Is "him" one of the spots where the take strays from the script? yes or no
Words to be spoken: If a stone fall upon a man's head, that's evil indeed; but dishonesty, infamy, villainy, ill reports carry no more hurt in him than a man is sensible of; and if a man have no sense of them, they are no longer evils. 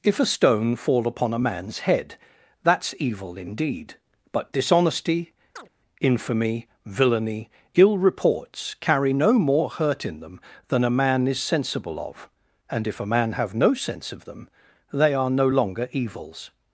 yes